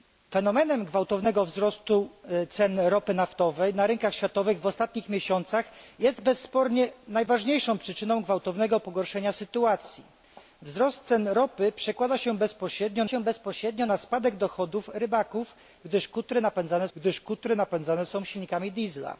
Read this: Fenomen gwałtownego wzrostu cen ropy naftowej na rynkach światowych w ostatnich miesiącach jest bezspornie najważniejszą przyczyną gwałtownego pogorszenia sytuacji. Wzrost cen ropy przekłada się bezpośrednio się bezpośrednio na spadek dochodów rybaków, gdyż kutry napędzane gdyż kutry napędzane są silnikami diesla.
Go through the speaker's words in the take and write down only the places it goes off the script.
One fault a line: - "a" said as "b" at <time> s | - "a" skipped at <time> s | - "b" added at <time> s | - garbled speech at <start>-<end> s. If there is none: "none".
none